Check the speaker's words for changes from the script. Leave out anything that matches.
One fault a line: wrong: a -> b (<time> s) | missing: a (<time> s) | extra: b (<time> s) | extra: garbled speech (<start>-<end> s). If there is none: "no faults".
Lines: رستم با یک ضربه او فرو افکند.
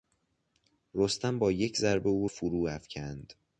no faults